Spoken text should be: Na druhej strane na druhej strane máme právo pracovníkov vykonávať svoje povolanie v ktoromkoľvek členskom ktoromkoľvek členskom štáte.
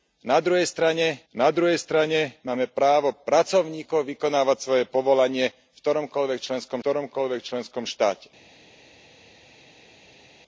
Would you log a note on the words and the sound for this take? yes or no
no